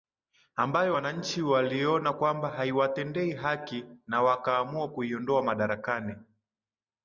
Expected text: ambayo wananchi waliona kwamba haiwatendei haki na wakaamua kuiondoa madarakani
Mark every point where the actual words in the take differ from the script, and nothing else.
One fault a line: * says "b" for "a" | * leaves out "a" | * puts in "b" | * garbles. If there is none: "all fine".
all fine